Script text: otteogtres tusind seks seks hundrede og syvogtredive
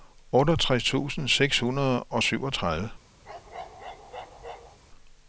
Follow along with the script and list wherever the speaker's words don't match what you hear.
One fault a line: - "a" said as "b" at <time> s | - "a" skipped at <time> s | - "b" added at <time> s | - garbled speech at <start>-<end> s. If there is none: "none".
- "seks" skipped at 1.6 s